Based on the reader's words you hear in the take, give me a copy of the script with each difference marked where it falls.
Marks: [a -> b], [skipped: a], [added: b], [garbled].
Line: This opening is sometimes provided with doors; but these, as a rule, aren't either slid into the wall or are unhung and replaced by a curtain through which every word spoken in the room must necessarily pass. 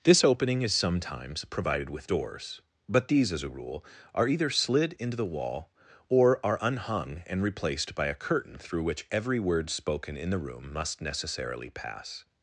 This opening is sometimes provided with doors; but these, as a rule, [aren't -> are] either slid into the wall or are unhung and replaced by a curtain through which every word spoken in the room must necessarily pass.